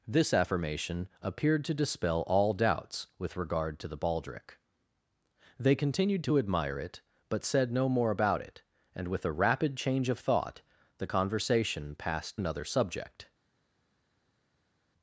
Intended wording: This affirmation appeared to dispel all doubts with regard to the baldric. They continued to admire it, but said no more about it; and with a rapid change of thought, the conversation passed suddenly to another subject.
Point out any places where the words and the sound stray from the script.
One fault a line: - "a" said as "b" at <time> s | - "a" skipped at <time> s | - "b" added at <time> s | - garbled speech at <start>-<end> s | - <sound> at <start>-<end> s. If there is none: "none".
- "suddenly to" skipped at 12.4 s